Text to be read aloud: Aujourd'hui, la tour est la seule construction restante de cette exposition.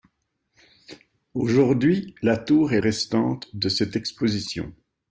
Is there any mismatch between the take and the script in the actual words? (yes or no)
yes